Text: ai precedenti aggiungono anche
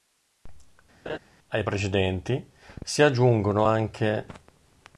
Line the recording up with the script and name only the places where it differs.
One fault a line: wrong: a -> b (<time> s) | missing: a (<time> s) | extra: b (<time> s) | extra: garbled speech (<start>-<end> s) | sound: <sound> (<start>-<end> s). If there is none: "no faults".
sound: laugh (1.1-1.2 s)
extra: si (2.8 s)